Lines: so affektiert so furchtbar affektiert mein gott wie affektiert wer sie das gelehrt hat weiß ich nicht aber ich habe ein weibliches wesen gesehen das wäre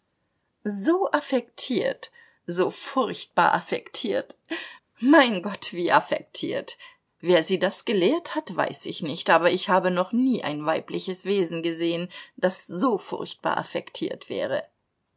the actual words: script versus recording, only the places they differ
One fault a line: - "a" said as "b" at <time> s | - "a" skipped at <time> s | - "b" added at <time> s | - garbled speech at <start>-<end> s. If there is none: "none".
- "noch nie" added at 9.9 s
- "so furchtbar affektiert" added at 12.7 s